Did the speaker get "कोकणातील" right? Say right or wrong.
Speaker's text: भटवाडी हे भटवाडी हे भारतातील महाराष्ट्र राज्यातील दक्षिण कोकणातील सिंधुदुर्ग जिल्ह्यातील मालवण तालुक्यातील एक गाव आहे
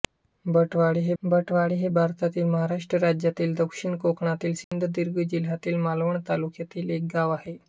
right